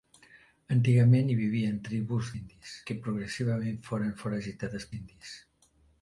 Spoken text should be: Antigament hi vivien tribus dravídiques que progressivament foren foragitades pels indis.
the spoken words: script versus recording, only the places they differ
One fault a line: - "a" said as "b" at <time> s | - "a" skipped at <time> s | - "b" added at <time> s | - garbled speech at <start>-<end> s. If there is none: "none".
- "dravídiques" said as "indis" at 2.4 s
- "pels" skipped at 4.9 s